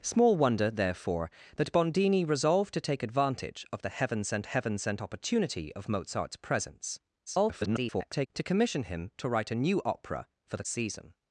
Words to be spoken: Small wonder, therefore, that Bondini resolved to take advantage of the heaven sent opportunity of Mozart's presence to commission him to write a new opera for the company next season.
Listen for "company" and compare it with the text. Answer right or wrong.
wrong